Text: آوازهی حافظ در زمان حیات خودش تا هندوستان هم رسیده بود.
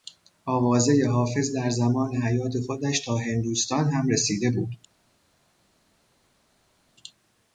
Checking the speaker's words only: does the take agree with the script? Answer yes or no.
yes